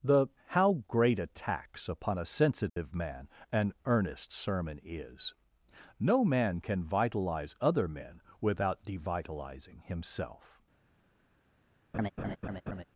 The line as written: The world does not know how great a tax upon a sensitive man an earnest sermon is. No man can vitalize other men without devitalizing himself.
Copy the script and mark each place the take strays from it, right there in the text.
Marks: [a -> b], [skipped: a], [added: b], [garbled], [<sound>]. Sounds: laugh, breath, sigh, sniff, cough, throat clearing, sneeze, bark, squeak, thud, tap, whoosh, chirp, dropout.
The [skipped: world does not know] how great a tax upon a sensitive [dropout] man an earnest sermon is. No man can vitalize other men without devitalizing himself. [laugh]